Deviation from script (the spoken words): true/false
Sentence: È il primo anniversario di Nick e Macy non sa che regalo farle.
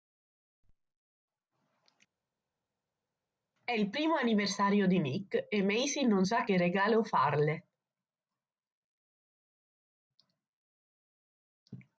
false